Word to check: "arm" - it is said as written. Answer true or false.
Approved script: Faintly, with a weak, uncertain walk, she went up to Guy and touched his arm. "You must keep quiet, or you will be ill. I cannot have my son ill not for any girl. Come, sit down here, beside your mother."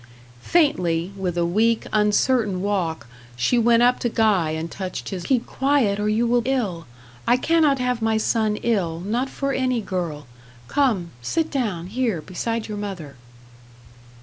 false